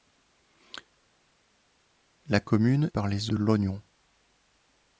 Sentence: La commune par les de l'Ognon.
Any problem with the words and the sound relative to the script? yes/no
no